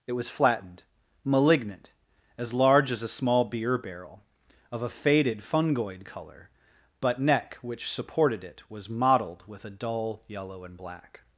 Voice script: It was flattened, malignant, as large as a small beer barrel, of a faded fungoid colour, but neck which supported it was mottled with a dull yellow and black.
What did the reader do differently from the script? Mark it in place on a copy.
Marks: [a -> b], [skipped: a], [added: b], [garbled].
It was flattened, malignant, as large as a small beer barrel, of a faded fungoid colour, but neck which supported it was mottled with a dull yellow and black.